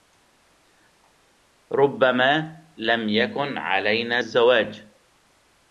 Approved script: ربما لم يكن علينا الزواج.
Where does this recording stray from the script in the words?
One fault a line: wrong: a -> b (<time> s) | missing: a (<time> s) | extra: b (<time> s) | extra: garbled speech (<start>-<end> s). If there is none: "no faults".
no faults